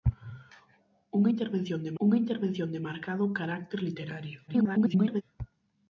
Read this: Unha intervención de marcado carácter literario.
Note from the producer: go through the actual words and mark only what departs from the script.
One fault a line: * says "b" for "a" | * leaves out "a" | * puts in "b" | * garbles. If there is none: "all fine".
* puts in "unha intervención de"
* garbles